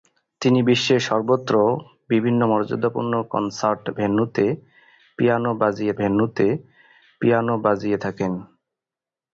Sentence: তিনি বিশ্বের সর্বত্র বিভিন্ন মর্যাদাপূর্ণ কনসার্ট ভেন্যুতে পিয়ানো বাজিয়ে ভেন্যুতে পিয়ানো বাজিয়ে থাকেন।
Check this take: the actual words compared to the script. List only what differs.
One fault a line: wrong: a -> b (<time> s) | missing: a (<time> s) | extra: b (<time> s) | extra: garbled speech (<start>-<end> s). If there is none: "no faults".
no faults